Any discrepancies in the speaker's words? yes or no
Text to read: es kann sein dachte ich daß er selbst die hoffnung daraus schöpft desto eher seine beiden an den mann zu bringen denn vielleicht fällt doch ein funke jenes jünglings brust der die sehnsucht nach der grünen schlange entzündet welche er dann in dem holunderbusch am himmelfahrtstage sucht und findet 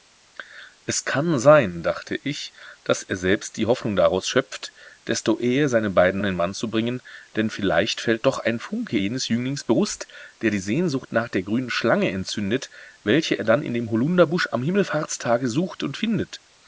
no